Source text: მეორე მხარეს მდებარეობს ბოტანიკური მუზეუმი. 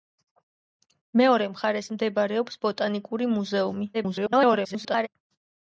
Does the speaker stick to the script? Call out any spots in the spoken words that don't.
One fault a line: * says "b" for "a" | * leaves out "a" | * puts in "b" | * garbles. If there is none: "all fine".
* garbles